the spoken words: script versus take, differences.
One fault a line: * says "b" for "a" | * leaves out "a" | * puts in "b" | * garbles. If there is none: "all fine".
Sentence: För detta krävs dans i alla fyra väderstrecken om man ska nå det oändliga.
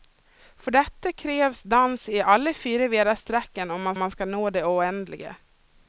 * puts in "man"